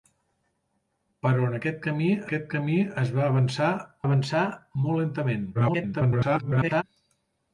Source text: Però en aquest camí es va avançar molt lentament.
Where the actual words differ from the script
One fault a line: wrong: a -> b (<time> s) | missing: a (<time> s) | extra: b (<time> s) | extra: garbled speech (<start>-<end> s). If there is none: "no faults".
extra: aquest camí (2.3 s)
extra: avançar (4.1 s)
extra: garbled speech (5.5-6.8 s)